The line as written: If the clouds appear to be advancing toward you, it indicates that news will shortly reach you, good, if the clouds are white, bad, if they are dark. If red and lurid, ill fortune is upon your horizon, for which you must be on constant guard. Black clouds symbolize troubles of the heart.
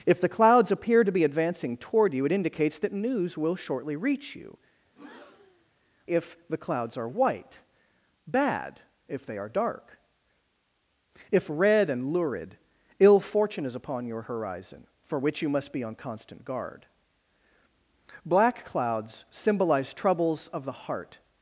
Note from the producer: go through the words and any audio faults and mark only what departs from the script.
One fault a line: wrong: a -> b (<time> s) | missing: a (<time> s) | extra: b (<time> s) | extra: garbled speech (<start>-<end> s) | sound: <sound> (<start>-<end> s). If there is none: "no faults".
missing: good (4.6 s)
sound: breath (4.9-5.7 s)